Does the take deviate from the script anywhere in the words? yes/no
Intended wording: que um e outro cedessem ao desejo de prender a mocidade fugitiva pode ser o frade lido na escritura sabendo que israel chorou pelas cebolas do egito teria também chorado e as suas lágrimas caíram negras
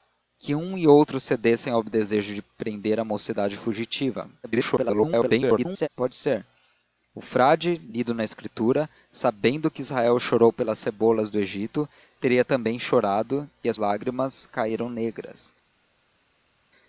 yes